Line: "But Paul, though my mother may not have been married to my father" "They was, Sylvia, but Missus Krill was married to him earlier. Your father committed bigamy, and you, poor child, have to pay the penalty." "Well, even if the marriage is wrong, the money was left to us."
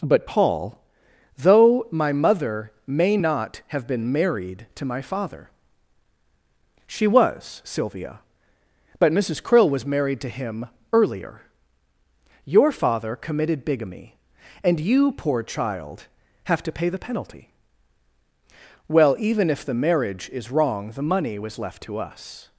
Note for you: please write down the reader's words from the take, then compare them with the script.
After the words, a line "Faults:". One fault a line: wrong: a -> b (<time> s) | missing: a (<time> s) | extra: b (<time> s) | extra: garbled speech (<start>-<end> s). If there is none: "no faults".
"But Paul, though my mother may not have been married to my father" "She was, Sylvia, but Missus Krill was married to him earlier. Your father committed bigamy, and you, poor child, have to pay the penalty." "Well, even if the marriage is wrong, the money was left to us."
Faults:
wrong: They -> She (6.9 s)